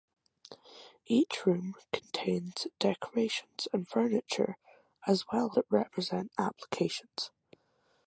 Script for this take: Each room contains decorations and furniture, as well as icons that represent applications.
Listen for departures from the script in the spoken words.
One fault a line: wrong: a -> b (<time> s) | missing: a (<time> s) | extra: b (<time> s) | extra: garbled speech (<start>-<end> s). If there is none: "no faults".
missing: as icons (5.5 s)